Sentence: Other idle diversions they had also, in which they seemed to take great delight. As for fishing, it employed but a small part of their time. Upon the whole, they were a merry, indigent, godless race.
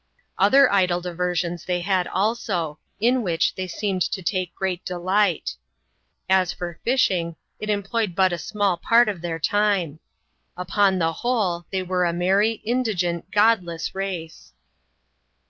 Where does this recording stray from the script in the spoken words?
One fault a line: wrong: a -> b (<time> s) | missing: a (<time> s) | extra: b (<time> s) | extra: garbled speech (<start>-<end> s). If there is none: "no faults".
no faults